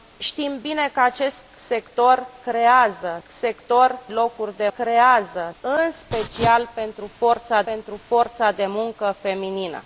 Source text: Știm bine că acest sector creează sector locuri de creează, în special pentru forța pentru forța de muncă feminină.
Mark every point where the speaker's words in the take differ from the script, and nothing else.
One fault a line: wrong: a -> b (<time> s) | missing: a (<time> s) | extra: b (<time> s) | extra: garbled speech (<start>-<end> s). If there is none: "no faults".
no faults